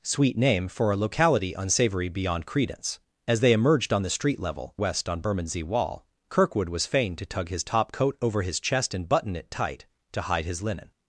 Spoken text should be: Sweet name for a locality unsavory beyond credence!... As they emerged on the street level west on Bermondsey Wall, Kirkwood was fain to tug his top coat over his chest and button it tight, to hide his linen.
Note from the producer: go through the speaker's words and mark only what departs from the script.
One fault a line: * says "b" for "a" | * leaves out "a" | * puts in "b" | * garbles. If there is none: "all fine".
all fine